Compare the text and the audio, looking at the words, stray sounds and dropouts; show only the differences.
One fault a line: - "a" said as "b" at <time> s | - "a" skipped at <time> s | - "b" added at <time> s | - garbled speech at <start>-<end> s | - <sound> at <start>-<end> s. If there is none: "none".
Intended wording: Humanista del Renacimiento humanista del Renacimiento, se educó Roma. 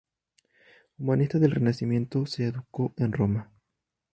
- "humanista del Renacimiento" skipped at 2.2 s
- "en" added at 2.9 s